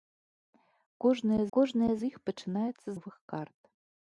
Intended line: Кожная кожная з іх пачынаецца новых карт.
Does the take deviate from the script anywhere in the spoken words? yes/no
no